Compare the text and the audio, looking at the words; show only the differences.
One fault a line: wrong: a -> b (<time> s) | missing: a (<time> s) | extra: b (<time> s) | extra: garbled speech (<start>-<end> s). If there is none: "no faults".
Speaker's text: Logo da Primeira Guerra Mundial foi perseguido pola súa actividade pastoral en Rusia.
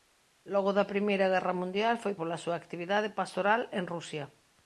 missing: perseguido (2.1 s)